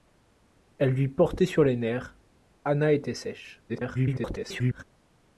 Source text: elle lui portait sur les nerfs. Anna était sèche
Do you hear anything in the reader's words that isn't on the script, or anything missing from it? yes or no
yes